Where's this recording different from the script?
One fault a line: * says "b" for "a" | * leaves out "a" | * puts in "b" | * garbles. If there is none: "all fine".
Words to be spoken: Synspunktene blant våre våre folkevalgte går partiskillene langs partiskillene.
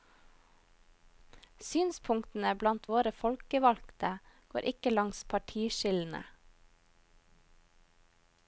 * leaves out "våre"
* says "ikke" for "partiskillene"